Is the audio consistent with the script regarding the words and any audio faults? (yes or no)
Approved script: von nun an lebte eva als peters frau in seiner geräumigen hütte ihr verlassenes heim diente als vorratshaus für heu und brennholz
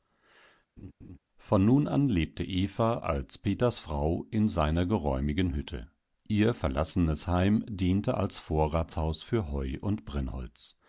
no